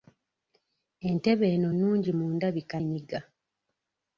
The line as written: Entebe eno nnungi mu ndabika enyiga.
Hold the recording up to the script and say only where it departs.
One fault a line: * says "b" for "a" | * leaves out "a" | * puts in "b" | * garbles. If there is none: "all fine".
all fine